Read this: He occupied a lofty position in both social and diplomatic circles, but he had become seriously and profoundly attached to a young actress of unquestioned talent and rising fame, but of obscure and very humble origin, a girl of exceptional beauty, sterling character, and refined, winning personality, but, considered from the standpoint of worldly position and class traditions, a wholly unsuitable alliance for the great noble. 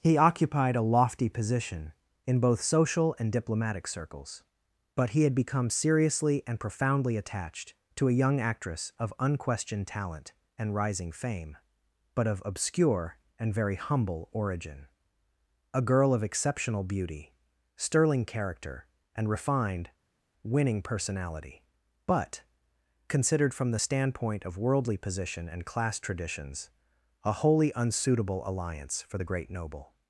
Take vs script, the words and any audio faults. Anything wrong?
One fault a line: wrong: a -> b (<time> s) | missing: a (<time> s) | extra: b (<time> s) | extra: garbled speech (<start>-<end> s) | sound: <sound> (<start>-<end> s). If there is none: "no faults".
no faults